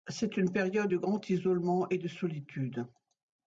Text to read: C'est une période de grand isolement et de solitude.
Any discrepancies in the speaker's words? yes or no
no